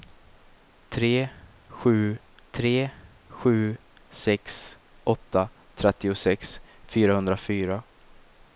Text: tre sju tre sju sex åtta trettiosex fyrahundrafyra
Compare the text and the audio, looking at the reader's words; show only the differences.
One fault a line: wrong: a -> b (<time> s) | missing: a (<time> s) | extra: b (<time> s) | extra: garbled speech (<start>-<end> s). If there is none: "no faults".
no faults